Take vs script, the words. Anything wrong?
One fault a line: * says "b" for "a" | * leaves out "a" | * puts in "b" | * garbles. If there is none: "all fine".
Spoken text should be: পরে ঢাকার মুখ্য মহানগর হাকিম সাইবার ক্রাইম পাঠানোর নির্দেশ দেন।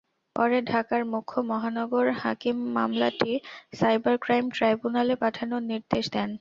* puts in "মামলাটি"
* puts in "ট্রাইব্যুনালে"